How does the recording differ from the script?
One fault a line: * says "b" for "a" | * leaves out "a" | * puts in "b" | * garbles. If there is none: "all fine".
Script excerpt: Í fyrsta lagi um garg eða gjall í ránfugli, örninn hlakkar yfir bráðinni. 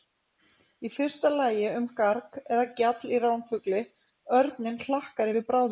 all fine